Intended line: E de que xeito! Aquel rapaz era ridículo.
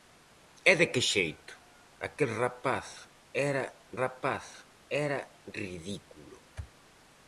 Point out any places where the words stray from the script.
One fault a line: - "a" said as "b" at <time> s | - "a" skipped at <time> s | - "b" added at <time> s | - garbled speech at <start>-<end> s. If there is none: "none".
- "rapaz era" added at 4.0 s